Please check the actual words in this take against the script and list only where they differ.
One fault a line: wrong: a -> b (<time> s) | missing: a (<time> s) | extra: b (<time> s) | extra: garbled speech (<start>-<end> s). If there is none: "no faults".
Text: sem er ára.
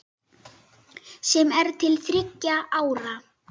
extra: til þriggja (1.9 s)